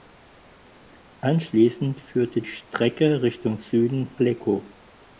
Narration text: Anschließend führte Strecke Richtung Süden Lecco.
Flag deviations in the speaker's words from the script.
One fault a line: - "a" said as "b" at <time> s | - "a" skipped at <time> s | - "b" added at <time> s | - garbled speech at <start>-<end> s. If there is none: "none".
none